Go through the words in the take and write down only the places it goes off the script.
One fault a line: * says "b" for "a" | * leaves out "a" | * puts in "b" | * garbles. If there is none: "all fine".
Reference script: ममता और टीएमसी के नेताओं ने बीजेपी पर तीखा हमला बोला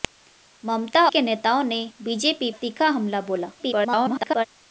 * leaves out "और टीएमसी"
* leaves out "पर"
* garbles